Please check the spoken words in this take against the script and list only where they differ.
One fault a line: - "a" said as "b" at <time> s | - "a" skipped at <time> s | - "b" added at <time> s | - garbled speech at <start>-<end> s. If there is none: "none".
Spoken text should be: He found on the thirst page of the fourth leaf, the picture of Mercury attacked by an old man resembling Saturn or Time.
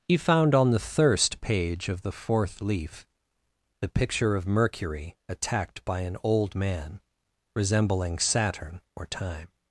none